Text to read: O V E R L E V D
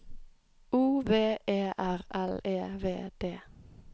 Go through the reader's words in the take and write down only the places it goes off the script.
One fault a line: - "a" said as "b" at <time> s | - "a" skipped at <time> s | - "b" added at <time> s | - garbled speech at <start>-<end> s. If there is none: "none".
none